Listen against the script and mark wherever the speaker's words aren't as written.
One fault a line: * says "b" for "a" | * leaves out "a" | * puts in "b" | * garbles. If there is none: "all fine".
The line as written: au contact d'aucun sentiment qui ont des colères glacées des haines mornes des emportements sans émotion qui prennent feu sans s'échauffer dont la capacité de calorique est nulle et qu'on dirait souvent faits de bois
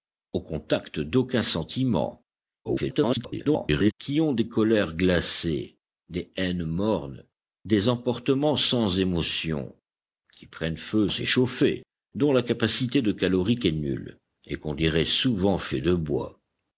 * garbles
* leaves out "sans"